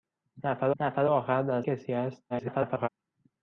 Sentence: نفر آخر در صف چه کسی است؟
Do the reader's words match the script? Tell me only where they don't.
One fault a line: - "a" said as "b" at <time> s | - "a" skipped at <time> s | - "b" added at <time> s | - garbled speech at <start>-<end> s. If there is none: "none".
- "نفر" added at 0.8 s
- "صف چه" skipped at 1.6 s
- garbled speech at 2.3-2.9 s